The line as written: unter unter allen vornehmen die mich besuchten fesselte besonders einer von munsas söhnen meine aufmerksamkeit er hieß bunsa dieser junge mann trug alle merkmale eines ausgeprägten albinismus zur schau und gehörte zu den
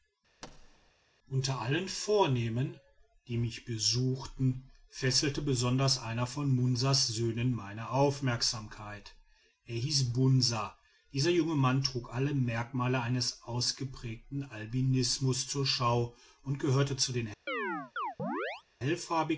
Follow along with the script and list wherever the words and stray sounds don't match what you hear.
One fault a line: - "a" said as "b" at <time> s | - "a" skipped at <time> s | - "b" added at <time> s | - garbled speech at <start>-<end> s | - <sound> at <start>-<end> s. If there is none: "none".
- thud at 0.4-0.9 s
- "unter" skipped at 1.6 s
- chirp at 17.5-18.6 s